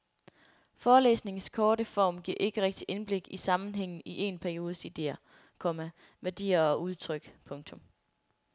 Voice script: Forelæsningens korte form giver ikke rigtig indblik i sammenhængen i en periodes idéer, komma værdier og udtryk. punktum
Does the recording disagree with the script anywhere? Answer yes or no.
no